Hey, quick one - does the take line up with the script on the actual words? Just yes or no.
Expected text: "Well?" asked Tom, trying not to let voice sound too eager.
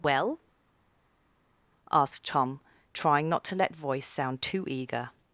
yes